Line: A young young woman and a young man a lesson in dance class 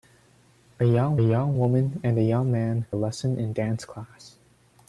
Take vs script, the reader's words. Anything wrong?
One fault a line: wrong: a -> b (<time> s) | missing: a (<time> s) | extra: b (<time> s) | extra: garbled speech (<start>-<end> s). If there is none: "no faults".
no faults